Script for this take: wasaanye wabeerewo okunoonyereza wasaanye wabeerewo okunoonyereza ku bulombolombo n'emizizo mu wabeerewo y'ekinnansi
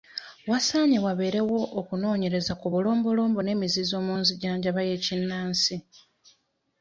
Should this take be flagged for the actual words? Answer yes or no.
yes